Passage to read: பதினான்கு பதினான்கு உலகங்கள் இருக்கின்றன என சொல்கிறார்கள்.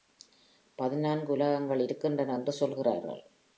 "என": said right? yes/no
no